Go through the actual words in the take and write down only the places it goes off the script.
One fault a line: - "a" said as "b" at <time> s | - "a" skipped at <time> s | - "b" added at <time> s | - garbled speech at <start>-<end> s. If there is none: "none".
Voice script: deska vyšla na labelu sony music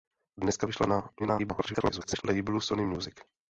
- garbled speech at 1.2-2.2 s